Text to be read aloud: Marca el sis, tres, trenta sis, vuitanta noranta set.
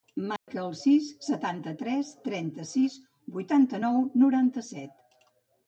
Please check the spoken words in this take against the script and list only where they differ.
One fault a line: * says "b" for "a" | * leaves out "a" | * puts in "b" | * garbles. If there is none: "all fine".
* puts in "setanta"
* puts in "nou"